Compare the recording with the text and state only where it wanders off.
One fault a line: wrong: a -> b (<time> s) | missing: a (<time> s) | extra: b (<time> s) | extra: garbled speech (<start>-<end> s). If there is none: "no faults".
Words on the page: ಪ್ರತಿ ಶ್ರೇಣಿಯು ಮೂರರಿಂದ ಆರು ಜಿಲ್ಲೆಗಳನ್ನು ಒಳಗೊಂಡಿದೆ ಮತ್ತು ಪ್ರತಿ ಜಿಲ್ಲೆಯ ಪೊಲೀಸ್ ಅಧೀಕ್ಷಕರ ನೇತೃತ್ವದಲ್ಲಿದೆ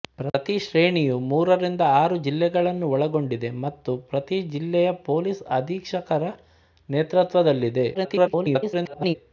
extra: garbled speech (7.9-9.2 s)